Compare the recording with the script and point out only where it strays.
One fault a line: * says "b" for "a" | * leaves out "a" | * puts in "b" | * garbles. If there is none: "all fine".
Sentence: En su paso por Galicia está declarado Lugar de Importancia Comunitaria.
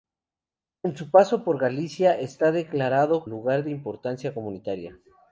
all fine